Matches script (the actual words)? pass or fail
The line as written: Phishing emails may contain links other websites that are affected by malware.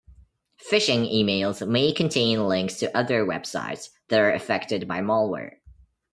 fail